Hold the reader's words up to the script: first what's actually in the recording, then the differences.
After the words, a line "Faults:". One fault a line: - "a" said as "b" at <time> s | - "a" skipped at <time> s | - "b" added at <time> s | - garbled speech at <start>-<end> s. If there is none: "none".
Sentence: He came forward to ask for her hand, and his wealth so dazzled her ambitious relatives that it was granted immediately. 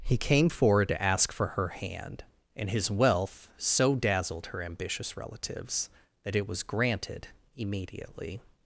He came forward to ask for her hand, and his wealth so dazzled her ambitious relatives that it was granted immediately.
Faults:
none